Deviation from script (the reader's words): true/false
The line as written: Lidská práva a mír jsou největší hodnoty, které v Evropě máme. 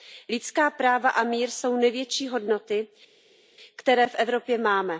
false